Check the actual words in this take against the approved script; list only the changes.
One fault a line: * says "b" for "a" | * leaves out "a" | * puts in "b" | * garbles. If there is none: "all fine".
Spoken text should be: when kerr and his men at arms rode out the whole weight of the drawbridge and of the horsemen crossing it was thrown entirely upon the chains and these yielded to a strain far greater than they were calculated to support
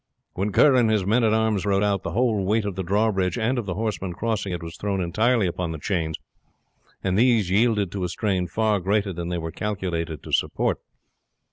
all fine